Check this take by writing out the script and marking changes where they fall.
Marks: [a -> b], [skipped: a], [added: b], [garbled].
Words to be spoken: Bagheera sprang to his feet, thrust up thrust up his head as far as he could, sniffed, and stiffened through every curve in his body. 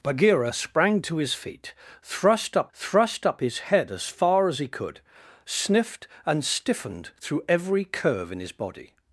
Bagheera sprang to his feet, thrust up thrust up his head as far as he could, sniffed, and stiffened through every curve in his body.